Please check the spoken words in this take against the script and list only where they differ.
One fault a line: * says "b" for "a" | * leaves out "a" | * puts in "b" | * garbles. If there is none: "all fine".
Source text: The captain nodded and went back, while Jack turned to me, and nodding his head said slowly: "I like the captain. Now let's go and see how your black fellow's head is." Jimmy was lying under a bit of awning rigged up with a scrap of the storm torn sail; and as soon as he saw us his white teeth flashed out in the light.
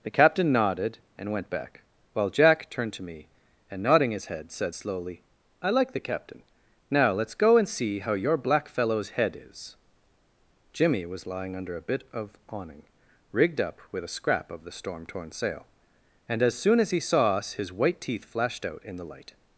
all fine